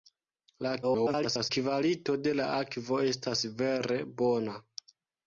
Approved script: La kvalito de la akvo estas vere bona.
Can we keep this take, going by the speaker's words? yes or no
no